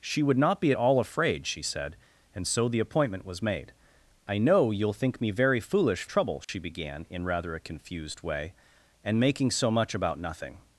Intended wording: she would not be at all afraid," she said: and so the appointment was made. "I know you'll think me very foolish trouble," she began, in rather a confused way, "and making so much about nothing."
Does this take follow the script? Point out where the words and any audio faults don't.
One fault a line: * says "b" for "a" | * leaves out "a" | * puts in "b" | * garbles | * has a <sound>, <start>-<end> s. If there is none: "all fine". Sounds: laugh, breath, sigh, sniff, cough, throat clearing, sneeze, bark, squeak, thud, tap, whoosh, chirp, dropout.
* has a dropout, 6.4-6.5 s